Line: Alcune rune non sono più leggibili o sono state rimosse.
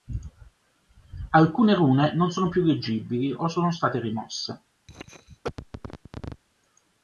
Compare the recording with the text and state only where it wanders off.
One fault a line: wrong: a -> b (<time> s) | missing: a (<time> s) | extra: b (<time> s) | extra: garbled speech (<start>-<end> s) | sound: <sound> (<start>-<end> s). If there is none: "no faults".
sound: cough (4.9-6.4 s)